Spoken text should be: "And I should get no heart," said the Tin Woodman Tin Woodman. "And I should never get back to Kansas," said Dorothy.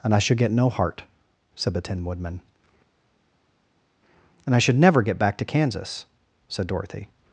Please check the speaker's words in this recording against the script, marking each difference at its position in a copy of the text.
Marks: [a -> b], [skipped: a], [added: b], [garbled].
"And I should get no heart," said the Tin Woodman [skipped: Tin Woodman.] "And I should never get back to Kansas," said Dorothy.